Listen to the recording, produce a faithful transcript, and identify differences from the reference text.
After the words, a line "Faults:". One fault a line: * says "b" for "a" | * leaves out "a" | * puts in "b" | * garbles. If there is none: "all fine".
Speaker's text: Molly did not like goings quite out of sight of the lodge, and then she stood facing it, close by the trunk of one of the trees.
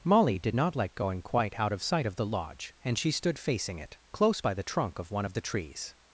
Molly did not like going quite out of sight of the lodge, and she stood facing it, close by the trunk of one of the trees.
Faults:
* says "going" for "goings"
* leaves out "then"